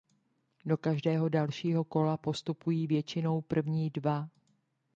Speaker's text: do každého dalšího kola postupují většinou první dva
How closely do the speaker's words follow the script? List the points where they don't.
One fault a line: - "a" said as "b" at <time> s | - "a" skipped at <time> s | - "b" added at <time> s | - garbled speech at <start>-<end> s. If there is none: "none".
none